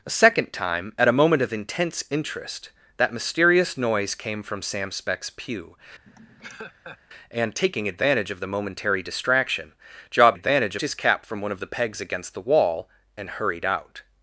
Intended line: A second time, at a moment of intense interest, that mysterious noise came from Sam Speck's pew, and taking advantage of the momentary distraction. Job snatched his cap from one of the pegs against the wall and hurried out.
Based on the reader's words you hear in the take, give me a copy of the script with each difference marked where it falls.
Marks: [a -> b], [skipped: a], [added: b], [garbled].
A second time, at a moment of intense interest, that mysterious noise came from Sam Speck's pew, and taking advantage of the momentary distraction. Job [snatched -> advantage] his cap from one of the pegs against the wall and hurried out.